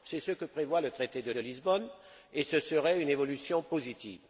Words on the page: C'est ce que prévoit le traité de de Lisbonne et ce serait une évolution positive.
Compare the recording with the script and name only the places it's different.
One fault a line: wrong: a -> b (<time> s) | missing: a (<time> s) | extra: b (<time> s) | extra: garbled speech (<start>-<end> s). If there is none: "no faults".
no faults